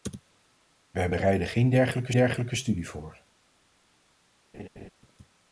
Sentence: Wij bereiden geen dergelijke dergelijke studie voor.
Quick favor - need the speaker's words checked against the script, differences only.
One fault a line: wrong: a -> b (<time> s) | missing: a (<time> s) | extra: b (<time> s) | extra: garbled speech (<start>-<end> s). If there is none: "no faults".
no faults